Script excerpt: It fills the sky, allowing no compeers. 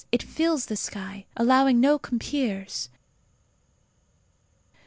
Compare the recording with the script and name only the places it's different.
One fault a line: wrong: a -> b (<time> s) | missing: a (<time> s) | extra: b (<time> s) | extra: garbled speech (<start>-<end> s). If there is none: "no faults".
no faults